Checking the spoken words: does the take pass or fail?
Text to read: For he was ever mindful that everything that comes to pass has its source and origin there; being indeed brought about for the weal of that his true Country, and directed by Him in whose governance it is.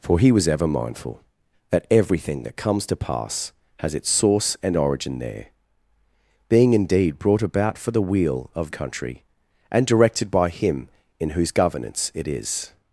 fail